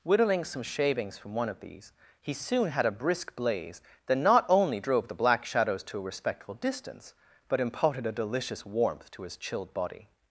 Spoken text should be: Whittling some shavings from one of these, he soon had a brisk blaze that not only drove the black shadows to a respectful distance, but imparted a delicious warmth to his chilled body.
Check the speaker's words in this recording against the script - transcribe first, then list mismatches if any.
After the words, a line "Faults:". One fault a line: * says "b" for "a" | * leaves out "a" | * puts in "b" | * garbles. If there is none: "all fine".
Whittling some shavings from one of these, he soon had a brisk blaze that not only drove the black shadows to a respectful distance, but imparted a delicious warmth to his chilled body.
Faults:
all fine